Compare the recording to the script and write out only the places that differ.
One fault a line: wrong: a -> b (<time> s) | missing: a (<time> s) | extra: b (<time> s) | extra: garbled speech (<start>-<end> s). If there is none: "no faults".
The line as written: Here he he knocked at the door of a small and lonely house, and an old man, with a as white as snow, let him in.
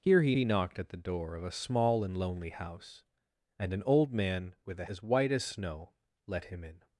no faults